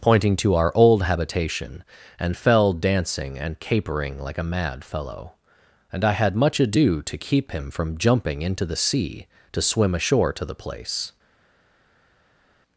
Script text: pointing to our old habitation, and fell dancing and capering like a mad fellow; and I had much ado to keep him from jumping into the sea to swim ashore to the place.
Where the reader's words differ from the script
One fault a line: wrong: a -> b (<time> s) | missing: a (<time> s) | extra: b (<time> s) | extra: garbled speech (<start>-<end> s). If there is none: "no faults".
no faults